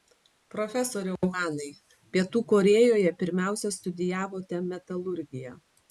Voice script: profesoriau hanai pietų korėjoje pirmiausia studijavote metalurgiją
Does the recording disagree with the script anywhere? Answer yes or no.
no